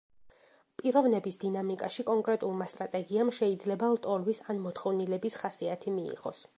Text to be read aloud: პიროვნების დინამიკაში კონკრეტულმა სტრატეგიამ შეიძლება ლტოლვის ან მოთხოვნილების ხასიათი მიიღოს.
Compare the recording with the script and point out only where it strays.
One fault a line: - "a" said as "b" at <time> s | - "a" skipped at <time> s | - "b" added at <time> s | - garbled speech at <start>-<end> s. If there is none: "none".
none